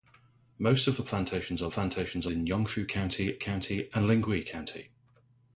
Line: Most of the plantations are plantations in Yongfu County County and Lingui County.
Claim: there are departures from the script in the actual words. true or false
false